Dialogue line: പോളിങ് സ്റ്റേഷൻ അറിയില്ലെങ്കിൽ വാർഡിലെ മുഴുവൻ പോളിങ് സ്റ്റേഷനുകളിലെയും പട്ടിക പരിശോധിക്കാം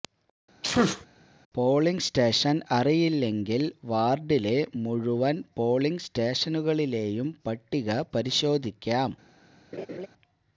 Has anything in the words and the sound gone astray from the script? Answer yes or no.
yes